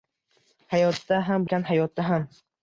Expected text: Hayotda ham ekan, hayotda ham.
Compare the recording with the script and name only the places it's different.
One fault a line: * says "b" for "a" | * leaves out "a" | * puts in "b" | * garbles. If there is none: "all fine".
all fine